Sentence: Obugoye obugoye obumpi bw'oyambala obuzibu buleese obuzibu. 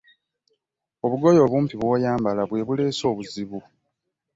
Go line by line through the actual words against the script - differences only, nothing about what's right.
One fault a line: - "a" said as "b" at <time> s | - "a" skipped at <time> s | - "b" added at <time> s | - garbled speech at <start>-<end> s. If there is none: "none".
- "obugoye" skipped at 1.4 s
- "obuzibu" said as "bwe" at 2.5 s